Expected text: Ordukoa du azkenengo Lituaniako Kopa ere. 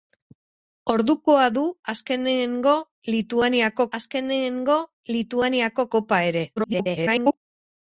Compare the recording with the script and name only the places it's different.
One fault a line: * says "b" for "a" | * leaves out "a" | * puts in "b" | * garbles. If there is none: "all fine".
* puts in "azkenengo Lituaniako"
* garbles